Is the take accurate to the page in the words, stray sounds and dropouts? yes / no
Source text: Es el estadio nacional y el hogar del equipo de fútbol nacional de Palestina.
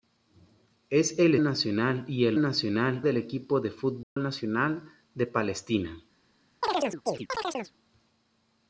no